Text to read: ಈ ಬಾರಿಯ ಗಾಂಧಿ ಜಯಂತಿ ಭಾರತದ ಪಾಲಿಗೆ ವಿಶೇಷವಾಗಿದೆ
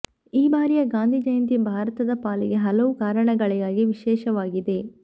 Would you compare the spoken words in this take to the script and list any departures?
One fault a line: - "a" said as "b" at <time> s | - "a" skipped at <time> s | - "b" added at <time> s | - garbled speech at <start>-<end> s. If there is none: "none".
- "ಹಲವು ಕಾರಣಗಳಿಗಾಗಿ" added at 2.7 s